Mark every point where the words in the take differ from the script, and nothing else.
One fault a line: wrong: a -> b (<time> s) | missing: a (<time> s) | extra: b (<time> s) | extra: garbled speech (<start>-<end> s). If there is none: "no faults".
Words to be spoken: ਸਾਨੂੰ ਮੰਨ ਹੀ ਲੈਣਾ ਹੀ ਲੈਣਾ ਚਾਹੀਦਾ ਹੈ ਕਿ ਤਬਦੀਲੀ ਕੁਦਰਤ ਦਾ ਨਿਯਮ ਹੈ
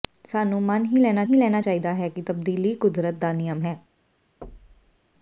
no faults